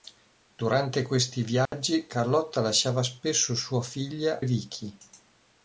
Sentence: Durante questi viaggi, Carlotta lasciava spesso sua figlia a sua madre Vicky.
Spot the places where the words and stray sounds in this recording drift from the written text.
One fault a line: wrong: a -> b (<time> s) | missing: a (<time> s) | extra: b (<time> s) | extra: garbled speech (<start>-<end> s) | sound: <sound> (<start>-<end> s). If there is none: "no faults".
sound: dropout (1.7-1.7 s)
missing: a sua madre (4.4 s)